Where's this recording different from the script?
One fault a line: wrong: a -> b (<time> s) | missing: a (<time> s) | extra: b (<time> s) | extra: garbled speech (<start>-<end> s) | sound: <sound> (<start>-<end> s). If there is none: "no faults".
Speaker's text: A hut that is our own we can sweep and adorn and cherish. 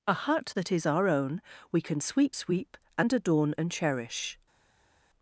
extra: sweep (2.3 s)